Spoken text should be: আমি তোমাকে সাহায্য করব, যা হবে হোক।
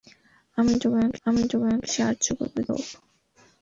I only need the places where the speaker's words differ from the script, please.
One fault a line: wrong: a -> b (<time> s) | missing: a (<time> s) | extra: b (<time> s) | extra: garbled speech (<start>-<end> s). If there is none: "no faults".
extra: আমি তোমাকে (1.3 s)
missing: যা হবে (2.6 s)